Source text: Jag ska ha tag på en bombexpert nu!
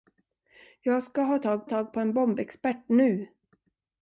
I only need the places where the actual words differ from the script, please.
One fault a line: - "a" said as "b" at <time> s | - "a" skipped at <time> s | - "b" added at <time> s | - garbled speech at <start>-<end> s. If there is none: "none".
- "tag" added at 1.6 s